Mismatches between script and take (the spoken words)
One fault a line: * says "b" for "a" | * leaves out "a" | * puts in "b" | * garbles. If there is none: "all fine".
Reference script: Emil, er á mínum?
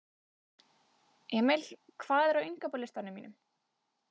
* puts in "hvað"
* puts in "innkaupalistanum"